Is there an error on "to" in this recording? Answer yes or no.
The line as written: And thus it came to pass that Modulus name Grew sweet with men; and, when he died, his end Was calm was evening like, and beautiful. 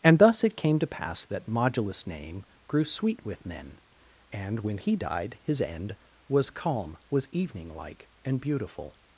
no